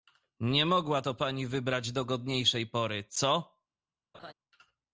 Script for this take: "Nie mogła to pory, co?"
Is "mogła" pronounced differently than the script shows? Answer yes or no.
no